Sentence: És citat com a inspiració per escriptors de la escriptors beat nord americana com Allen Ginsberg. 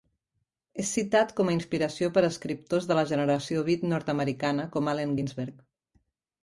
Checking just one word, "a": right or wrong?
right